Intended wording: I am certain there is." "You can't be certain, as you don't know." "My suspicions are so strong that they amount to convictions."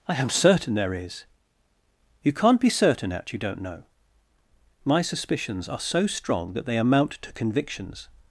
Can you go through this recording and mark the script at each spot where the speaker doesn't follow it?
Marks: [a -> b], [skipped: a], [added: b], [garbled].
I am certain there is." "You can't be certain, [as -> at] you don't know." "My suspicions are so strong that they amount to convictions."